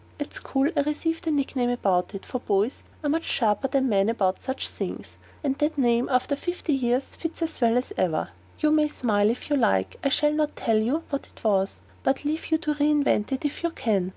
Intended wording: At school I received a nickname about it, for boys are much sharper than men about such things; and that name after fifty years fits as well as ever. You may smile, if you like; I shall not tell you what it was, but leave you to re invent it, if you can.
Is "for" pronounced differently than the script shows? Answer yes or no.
no